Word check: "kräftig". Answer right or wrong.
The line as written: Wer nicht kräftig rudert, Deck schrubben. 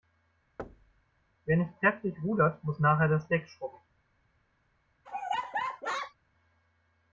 right